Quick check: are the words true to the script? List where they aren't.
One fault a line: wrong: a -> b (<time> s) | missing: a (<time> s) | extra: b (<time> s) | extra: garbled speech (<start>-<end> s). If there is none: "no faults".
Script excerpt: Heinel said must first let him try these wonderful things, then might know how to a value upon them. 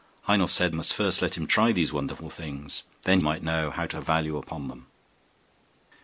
no faults